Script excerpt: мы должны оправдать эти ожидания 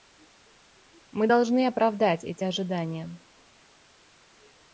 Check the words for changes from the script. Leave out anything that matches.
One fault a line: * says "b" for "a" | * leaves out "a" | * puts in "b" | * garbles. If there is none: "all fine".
all fine